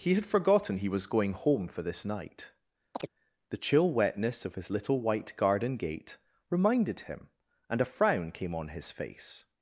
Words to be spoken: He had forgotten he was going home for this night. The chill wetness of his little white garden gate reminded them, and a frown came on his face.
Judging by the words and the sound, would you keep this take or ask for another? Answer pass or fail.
fail